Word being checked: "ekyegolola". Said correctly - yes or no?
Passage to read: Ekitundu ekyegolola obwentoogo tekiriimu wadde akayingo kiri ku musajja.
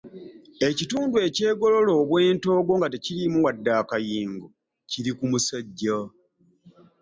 yes